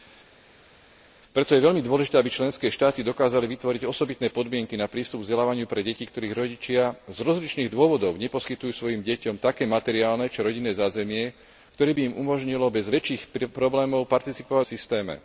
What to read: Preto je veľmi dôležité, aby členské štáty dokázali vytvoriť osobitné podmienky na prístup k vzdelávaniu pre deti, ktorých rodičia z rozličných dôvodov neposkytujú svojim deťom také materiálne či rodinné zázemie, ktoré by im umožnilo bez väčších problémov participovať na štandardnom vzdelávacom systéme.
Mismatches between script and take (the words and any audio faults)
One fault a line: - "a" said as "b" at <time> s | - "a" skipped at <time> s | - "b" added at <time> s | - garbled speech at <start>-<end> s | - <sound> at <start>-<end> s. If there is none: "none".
- "na štandardnom vzdelávacom" skipped at 14.7 s